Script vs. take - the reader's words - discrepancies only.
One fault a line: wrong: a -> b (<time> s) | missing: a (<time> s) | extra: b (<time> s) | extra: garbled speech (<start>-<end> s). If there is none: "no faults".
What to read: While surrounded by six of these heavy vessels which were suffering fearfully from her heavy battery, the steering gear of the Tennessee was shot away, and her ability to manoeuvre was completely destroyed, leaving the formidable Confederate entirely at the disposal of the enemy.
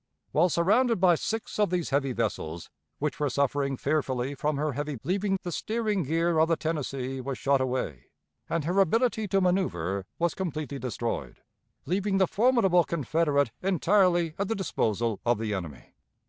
wrong: battery -> leaving (5.0 s)